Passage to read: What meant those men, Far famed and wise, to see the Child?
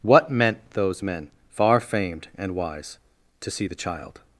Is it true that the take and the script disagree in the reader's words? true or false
false